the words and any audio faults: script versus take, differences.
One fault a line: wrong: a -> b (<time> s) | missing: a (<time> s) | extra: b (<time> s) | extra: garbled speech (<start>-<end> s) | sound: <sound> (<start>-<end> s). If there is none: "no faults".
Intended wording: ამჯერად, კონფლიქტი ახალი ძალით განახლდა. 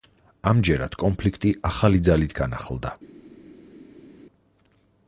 no faults